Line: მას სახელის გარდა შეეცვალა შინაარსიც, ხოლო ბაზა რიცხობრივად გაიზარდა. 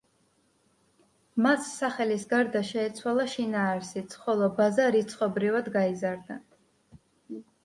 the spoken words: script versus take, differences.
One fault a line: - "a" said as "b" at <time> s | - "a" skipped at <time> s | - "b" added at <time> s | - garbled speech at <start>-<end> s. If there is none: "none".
none